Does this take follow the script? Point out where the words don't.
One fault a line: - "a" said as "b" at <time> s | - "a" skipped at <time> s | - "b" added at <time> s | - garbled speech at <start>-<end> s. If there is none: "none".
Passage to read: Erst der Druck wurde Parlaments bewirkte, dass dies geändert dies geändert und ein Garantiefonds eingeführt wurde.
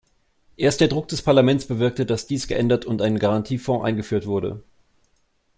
- "wurde" said as "des" at 1.1 s
- "dies geändert" skipped at 2.9 s